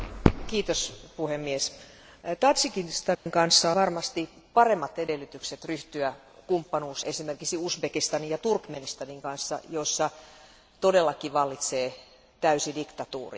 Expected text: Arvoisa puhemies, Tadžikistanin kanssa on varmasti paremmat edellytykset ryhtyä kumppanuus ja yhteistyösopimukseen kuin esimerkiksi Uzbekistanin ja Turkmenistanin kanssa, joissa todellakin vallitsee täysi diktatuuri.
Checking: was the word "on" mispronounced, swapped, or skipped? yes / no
yes